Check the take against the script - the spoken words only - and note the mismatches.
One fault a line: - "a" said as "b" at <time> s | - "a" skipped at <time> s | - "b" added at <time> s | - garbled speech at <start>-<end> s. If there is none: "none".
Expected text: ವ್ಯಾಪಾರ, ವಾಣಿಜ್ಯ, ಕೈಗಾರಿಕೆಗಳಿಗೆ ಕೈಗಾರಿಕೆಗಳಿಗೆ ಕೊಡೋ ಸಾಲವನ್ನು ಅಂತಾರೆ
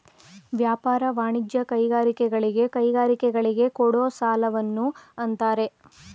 none